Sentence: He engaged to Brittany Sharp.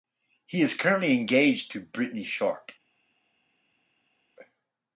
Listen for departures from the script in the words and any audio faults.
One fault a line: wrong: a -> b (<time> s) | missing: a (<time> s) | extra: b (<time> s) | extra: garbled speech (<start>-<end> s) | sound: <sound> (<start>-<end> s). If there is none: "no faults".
extra: is currently (0.6 s)